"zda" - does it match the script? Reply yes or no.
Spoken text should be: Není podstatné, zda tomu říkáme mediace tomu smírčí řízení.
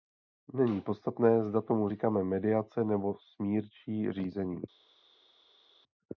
yes